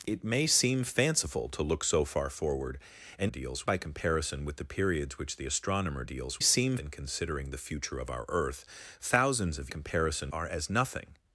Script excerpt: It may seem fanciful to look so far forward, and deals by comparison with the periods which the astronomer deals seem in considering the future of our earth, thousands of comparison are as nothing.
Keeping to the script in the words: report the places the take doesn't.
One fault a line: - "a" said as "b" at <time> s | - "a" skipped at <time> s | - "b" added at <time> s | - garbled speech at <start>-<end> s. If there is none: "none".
none